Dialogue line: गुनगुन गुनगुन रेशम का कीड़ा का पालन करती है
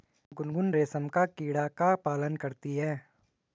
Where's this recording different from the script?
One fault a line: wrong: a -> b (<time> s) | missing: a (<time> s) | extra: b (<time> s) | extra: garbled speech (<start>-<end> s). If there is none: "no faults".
missing: गुनगुन (0.7 s)